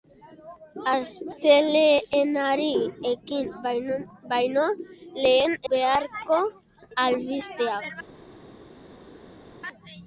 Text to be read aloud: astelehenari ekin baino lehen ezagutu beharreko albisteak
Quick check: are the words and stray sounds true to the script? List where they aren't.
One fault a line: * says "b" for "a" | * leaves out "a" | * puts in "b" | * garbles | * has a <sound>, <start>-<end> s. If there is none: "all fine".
* leaves out "ezagutu"